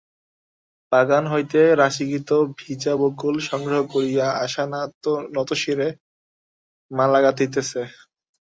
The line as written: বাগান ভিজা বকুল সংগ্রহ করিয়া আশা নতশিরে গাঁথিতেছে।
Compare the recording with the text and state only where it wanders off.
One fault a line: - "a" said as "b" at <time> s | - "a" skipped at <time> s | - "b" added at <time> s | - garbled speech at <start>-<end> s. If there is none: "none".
- "হইতে রাশীকৃত" added at 1.3 s
- "মালা" added at 6.9 s